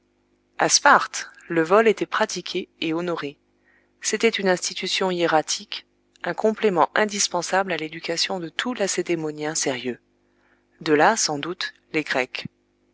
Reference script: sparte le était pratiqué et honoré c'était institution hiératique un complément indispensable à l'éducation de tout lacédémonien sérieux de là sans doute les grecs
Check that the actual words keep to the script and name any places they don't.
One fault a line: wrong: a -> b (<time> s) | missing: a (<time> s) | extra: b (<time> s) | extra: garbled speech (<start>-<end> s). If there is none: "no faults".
extra: vol (1.6 s)
extra: une (4.3 s)